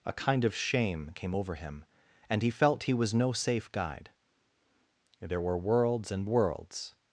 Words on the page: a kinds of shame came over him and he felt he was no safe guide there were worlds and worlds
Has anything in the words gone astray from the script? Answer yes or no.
yes